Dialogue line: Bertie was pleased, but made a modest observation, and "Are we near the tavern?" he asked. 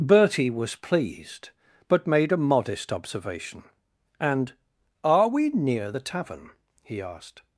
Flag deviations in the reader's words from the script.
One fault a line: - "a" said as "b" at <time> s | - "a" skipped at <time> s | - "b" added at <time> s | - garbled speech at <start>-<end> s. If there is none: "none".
none